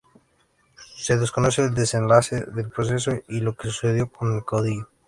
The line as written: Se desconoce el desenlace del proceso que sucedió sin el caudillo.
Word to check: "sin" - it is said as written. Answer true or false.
false